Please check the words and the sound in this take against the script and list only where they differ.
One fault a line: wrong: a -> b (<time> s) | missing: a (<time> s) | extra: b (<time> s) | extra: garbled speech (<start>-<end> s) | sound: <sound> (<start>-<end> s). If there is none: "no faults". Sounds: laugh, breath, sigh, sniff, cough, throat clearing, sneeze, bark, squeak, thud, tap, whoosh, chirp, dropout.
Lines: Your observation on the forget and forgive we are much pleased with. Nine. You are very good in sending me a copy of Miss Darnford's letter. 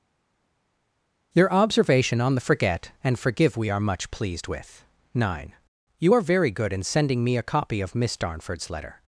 no faults